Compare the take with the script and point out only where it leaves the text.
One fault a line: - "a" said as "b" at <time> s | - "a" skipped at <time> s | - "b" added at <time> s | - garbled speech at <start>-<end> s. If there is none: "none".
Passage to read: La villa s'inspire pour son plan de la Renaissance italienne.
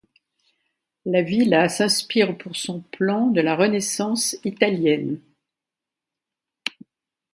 none